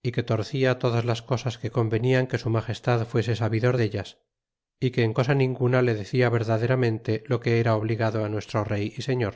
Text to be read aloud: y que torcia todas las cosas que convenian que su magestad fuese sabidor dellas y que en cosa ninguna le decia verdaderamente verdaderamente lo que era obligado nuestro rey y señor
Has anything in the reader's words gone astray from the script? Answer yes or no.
yes